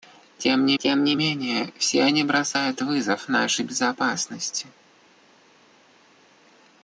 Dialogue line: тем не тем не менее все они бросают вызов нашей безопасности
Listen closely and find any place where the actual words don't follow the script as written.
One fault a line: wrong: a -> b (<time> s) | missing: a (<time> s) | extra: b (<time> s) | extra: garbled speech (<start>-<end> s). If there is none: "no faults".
no faults